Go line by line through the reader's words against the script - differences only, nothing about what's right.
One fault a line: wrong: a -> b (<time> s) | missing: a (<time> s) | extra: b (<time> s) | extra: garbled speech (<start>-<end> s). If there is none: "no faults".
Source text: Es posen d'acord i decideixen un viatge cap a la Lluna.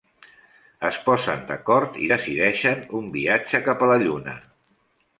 no faults